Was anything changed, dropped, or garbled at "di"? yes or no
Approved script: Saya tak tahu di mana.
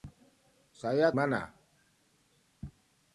yes